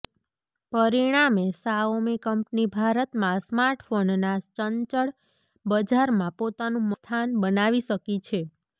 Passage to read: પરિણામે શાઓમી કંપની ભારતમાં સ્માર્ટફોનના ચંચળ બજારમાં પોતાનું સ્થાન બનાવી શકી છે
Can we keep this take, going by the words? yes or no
yes